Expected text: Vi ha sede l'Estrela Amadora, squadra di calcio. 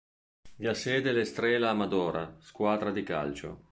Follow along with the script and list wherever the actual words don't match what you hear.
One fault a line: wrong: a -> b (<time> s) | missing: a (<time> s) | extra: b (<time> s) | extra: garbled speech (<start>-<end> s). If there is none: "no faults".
no faults